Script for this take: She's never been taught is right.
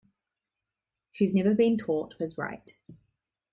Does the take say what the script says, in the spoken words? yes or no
yes